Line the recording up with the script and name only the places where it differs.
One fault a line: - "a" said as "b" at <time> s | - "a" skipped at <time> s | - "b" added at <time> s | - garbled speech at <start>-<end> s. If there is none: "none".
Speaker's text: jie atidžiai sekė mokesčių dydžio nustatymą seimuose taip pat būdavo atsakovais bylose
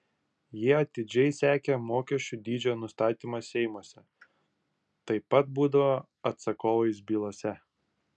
none